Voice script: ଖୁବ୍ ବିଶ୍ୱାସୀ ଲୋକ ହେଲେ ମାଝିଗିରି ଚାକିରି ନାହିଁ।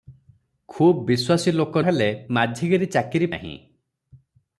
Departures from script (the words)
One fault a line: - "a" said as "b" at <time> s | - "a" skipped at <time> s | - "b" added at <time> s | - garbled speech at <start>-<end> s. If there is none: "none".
none